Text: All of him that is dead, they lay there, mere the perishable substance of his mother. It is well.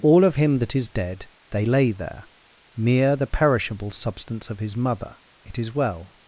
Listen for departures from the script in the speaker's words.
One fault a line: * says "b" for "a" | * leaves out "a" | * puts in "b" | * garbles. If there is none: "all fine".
all fine